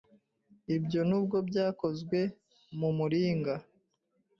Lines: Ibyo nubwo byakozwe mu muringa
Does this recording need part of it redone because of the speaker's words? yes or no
no